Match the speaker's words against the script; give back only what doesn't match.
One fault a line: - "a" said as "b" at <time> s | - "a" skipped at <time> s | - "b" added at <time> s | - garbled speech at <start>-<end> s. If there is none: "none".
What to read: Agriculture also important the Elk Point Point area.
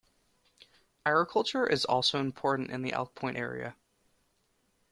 - "is" added at 1.7 s
- "in" added at 2.7 s
- "Point" skipped at 3.4 s